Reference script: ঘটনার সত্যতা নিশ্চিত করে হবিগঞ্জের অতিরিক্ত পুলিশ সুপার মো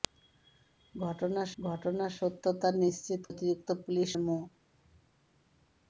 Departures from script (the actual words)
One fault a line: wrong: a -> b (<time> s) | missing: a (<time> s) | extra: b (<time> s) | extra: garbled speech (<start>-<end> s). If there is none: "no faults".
extra: ঘটনার (1.6 s)
missing: করে হবিগঞ্জের (3.2 s)
missing: সুপার (4.1 s)